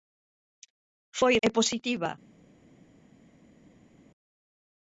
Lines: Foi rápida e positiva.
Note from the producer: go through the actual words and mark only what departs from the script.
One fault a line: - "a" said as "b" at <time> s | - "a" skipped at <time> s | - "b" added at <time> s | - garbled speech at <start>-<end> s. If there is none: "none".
- "rápida" skipped at 1.4 s